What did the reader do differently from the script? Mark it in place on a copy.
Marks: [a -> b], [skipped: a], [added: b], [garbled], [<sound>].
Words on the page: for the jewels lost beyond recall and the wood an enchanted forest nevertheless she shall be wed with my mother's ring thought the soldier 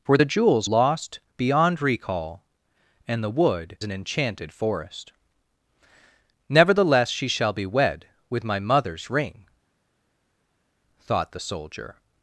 for the jewels lost beyond recall and the wood an enchanted forest nevertheless she shall be wed with my mother's ring thought the soldier